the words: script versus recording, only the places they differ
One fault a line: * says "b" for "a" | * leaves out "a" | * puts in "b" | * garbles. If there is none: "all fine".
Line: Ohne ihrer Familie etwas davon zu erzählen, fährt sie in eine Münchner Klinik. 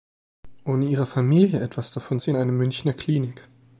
* leaves out "zu erzählen fährt"